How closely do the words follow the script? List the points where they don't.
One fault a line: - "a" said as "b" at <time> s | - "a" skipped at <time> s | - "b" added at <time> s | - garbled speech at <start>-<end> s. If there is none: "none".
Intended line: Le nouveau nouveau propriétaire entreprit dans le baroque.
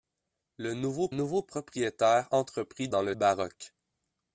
none